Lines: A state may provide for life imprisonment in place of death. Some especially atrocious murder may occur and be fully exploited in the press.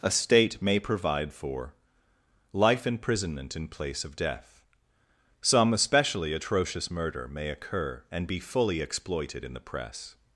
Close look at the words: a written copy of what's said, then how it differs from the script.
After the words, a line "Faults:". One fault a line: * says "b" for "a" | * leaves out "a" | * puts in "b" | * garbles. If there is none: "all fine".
A state may provide for life imprisonment in place of death. Some especially atrocious murder may occur and be fully exploited in the press.
Faults:
all fine